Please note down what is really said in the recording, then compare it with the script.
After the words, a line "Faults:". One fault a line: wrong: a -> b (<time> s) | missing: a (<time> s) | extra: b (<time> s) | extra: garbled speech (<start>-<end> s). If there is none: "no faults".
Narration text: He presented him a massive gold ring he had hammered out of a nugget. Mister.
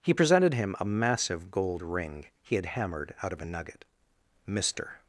He presented him a massive gold ring he had hammered out of a nugget. Mister.
Faults:
no faults